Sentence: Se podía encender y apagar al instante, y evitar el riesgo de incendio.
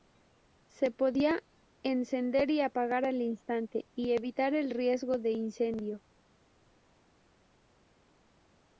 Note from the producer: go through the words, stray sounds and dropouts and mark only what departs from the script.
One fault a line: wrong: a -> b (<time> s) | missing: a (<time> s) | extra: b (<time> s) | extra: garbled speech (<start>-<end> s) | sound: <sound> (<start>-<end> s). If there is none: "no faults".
no faults